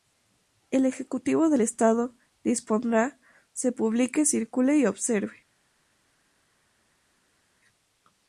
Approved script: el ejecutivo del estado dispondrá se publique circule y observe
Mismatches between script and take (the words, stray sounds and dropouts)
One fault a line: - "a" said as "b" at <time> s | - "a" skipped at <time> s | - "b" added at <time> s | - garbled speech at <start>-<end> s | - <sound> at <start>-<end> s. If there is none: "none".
none